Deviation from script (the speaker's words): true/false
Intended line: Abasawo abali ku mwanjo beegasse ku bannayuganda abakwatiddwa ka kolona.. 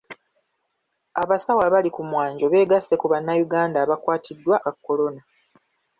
false